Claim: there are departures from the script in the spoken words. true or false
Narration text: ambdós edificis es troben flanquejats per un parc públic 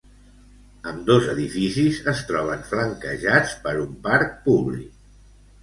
false